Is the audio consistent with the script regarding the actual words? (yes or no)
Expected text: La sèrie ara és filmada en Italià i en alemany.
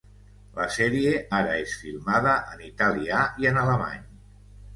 yes